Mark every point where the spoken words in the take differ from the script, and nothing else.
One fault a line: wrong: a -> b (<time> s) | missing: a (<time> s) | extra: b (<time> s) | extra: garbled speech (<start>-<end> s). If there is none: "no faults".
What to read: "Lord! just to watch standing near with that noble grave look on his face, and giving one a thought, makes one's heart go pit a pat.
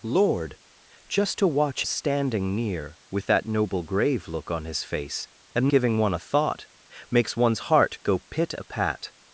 no faults